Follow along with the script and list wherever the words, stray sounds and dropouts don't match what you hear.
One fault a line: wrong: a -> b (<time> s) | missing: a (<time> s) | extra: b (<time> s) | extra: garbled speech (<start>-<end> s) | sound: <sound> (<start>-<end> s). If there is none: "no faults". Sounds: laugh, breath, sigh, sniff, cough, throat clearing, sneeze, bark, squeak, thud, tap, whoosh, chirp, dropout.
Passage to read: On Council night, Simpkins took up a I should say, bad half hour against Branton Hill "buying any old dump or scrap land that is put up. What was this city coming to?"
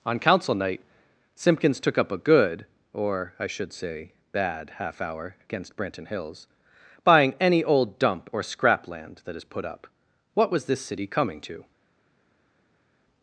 extra: good or (2.2 s)
wrong: Hill -> Hills (6.1 s)